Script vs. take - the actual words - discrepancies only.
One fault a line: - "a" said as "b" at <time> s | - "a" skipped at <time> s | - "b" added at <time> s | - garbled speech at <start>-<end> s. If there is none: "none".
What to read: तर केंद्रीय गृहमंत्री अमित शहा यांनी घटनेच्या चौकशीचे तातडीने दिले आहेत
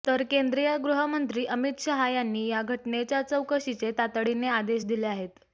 - "या" added at 2.5 s
- "आदेश" added at 4.5 s